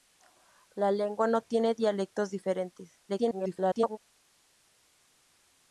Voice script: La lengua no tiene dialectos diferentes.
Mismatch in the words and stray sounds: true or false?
true